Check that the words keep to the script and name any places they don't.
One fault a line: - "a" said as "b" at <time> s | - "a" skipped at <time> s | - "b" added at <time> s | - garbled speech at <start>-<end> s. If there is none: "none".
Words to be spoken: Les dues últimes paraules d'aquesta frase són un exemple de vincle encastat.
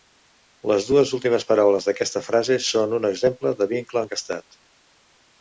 none